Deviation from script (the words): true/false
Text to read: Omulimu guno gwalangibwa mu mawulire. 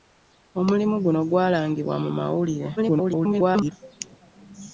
true